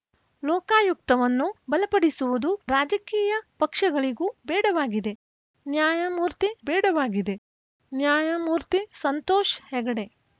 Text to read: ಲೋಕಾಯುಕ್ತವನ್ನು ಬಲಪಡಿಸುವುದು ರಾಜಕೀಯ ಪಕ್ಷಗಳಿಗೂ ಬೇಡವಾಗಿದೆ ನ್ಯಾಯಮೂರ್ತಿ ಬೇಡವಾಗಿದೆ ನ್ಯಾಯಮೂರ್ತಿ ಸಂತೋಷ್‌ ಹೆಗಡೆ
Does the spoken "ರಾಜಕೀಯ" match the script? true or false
true